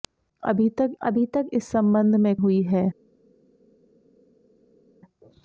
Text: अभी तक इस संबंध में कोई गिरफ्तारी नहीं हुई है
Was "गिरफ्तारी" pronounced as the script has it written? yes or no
no